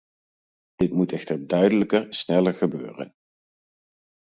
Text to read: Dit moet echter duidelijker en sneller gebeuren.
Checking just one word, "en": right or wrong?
wrong